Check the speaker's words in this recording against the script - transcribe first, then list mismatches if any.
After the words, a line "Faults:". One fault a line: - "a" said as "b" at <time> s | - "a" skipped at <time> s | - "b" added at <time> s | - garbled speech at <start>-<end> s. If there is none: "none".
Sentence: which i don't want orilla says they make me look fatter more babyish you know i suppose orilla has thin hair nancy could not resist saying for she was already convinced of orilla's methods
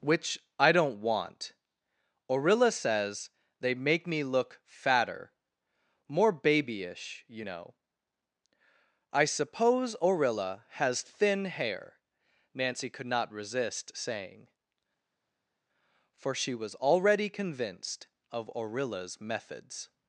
which i don't want orilla says they make me look fatter more babyish you know i suppose orilla has thin hair nancy could not resist saying for she was already convinced of orilla's methods
Faults:
none